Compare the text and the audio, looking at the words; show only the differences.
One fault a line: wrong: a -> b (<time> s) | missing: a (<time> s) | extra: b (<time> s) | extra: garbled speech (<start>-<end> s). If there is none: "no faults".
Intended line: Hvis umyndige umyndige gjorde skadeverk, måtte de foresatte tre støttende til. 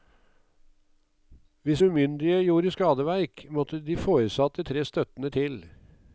missing: umyndige (2.4 s)